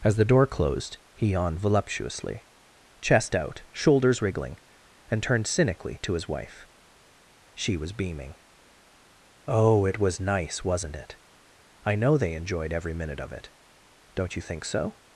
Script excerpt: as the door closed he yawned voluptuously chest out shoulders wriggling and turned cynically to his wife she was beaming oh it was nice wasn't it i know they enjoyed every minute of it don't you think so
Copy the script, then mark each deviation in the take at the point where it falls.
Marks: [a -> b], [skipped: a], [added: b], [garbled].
as the door closed he yawned voluptuously chest out shoulders wriggling and turned cynically to his wife she was beaming oh it was nice wasn't it i know they enjoyed every minute of it don't you think so